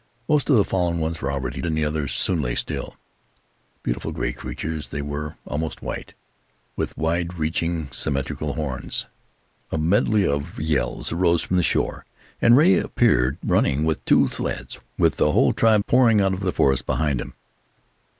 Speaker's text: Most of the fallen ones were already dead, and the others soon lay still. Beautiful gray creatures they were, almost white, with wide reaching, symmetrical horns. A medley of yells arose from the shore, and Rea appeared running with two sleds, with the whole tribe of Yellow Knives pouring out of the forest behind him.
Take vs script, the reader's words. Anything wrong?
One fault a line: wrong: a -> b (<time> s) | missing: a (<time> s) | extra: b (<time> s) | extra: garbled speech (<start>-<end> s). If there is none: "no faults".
missing: dead (1.6 s)
missing: of Yellow Knives (15.8 s)